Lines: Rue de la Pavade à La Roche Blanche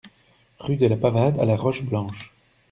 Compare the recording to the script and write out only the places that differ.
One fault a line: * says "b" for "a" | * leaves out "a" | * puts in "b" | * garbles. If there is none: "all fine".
all fine